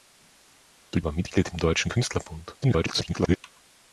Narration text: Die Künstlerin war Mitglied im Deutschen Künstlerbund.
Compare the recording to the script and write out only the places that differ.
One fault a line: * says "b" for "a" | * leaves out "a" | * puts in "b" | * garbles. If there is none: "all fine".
* leaves out "Künstlerin"
* garbles